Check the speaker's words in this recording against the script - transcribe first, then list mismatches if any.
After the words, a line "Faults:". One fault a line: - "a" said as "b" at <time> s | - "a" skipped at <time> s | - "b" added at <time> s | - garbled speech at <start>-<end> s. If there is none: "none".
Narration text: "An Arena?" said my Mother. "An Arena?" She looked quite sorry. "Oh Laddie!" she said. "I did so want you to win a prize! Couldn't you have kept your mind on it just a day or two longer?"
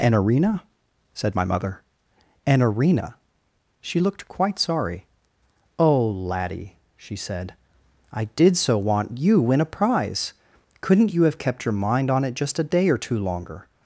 "An Arena?" said my Mother. "An Arena?" She looked quite sorry. "Oh Laddie!" she said. "I did so want you win a prize! Couldn't you have kept your mind on it just a day or two longer?"
Faults:
- "to" skipped at 9.4 s